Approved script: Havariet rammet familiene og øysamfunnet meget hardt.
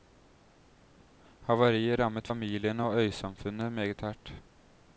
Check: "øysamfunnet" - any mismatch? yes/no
no